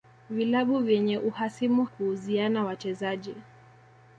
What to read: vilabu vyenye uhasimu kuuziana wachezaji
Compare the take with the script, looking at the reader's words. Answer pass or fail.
pass